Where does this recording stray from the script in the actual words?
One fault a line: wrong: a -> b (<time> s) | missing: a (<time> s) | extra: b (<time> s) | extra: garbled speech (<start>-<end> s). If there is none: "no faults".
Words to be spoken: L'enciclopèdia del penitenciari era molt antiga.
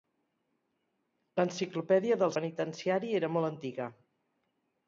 no faults